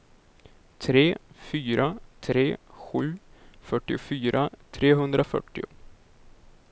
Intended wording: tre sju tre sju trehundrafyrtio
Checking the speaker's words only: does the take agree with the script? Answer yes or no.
no